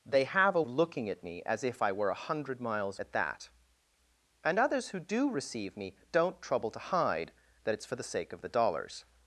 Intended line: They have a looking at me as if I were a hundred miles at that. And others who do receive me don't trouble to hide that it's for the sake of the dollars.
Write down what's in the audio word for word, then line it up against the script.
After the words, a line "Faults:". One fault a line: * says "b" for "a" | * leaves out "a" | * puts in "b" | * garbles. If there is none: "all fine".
They have a looking at me as if I were a hundred miles at that. And others who do receive me don't trouble to hide that it's for the sake of the dollars.
Faults:
all fine